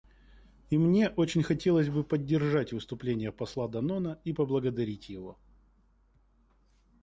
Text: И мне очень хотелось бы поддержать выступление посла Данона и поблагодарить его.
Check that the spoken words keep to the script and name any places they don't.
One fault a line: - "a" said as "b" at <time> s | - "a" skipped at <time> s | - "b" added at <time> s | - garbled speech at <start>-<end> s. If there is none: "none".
none